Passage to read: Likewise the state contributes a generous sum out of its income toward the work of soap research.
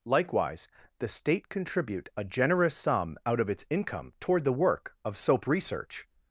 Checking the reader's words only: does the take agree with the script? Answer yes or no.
no